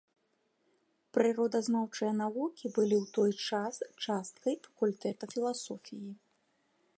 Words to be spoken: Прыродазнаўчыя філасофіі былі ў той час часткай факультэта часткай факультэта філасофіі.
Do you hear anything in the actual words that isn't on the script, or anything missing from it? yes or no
yes